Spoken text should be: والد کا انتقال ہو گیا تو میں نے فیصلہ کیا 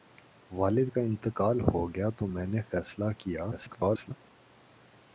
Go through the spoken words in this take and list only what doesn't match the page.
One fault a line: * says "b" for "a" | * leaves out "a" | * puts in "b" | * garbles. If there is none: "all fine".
* garbles